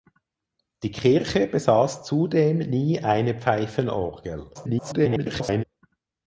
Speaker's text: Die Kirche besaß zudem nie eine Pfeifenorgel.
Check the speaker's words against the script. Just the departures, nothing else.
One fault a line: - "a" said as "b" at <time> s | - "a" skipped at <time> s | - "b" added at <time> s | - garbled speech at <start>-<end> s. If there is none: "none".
- garbled speech at 4.5-5.6 s